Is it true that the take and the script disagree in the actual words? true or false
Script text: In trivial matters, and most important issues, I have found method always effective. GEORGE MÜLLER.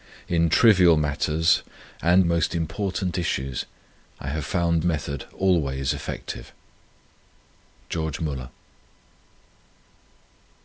false